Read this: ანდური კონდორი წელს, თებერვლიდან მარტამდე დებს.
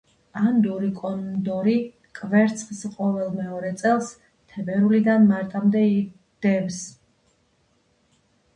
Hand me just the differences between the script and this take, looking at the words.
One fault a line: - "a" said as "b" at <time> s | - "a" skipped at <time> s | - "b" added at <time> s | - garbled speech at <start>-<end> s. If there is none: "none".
- "კვერცხს ყოველ მეორე" added at 2.2 s